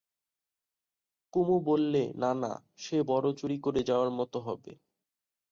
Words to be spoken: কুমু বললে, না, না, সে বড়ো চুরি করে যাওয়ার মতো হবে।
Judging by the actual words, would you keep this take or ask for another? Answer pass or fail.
pass